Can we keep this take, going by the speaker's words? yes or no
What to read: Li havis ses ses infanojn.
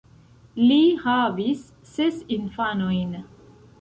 no